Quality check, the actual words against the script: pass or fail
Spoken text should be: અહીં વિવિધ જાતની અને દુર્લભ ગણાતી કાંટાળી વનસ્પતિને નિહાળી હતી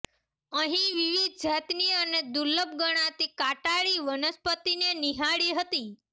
pass